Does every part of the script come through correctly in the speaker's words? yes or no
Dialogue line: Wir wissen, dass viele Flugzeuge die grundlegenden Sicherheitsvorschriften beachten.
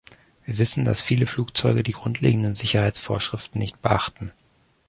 no